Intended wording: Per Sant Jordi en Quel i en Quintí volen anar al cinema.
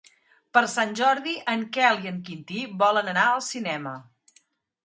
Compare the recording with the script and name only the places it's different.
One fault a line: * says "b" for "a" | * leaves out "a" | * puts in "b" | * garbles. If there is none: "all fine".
all fine